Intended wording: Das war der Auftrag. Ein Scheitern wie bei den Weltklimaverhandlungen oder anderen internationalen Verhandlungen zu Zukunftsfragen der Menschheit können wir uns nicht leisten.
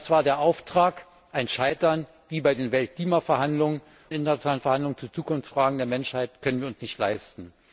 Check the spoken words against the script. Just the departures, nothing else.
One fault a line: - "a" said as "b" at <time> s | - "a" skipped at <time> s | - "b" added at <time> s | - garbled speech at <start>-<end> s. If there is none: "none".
- "oder anderen" skipped at 3.8 s